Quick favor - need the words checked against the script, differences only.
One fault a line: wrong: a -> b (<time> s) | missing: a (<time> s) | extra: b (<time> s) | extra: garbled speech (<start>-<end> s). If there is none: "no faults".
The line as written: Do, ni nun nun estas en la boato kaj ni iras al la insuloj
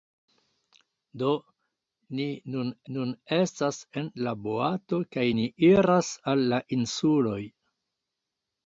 no faults